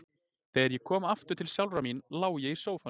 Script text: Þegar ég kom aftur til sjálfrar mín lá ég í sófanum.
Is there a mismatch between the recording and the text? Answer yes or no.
no